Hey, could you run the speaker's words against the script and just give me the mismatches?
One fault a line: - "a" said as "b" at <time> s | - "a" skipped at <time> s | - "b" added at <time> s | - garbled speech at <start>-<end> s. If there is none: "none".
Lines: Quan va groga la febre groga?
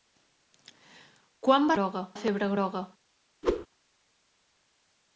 none